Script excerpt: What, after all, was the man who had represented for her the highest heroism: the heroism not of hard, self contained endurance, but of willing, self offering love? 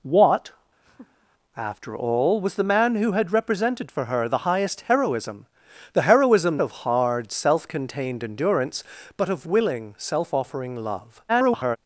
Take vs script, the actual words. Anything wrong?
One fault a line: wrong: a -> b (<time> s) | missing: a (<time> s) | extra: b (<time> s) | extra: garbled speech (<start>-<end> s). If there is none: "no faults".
missing: not (6.6 s)
extra: garbled speech (11.3-11.8 s)